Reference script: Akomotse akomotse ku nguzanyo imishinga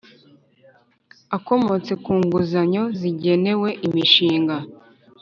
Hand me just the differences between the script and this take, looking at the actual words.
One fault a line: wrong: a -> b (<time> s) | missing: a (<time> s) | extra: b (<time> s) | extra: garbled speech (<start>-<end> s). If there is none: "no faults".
missing: akomotse (1.9 s)
extra: zigenewe (3.0 s)